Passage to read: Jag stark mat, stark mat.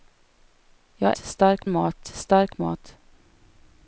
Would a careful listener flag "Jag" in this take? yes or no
no